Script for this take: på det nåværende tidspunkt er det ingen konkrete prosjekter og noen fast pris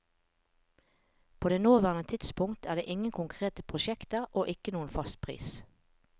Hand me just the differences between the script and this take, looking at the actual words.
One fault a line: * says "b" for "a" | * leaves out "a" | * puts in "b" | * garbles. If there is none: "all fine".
* puts in "ikke"